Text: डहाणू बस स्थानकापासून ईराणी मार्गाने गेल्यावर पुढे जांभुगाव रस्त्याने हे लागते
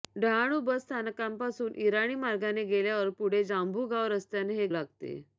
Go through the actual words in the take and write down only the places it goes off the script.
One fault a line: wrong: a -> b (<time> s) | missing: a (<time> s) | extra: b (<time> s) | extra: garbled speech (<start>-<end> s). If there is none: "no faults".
no faults